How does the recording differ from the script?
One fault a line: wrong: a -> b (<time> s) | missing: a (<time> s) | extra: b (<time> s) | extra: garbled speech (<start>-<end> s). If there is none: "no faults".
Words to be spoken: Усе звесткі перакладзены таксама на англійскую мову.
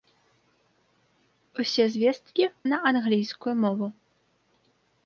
missing: перакладзены таксама (2.4 s)